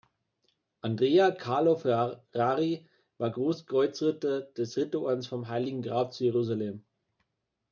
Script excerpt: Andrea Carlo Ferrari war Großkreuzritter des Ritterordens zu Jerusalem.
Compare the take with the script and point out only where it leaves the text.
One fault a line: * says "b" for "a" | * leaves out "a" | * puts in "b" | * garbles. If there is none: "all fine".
* puts in "vom Heiligen Grab"